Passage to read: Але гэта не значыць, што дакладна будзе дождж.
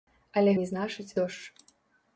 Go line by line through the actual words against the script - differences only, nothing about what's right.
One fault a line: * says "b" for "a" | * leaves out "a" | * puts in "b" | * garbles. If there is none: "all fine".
* leaves out "гэта"
* leaves out "што дакладна будзе"